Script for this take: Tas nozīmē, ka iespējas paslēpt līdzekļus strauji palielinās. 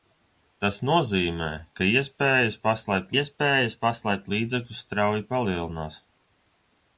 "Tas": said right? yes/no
yes